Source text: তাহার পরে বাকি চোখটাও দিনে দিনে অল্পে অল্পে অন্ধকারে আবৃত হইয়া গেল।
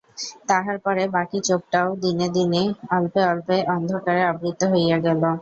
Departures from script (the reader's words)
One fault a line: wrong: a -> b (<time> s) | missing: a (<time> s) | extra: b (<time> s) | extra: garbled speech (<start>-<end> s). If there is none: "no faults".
no faults